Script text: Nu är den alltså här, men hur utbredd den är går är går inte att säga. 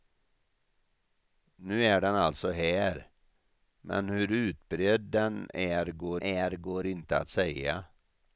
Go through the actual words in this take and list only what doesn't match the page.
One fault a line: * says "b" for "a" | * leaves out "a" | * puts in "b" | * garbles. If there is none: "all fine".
all fine